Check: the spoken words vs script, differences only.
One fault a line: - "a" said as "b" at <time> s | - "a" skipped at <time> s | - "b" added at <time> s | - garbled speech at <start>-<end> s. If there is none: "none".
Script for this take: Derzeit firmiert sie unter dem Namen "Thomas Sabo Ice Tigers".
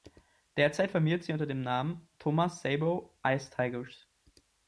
none